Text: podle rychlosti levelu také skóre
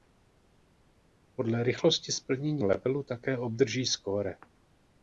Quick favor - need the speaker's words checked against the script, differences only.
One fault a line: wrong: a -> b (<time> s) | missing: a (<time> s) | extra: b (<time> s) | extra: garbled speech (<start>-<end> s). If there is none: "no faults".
extra: splnění (2.1 s)
extra: obdrží (3.4 s)